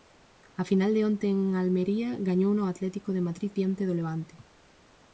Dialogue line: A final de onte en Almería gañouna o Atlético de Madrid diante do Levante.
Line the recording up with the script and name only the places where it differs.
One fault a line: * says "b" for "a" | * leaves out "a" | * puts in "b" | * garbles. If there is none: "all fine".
all fine